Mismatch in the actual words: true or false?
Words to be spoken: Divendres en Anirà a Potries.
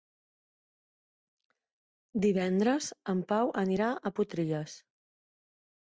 true